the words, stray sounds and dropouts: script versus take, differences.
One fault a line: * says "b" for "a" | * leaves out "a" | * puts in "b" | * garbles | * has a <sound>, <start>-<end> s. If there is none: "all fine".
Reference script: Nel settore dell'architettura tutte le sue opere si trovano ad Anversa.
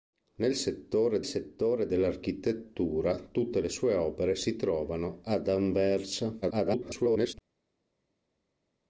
* puts in "settore"
* garbles